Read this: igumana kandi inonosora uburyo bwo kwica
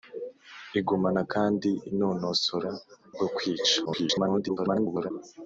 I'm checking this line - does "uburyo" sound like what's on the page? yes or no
no